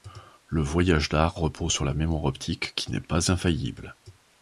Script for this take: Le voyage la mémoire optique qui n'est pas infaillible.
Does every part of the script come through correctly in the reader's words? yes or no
no